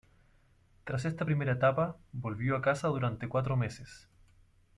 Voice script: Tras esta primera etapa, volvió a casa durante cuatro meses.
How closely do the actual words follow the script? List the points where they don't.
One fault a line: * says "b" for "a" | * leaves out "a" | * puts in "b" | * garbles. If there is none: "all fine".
all fine